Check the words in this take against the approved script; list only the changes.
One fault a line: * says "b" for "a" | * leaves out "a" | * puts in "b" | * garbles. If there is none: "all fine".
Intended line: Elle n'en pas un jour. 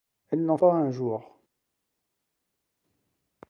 all fine